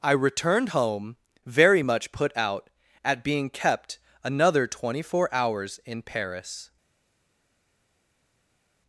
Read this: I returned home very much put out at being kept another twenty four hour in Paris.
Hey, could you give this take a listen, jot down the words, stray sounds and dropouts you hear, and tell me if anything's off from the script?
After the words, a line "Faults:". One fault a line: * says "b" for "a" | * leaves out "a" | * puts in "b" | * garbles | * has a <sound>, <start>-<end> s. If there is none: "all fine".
I returned home very much put out at being kept another twenty four hours in Paris.
Faults:
* says "hours" for "hour"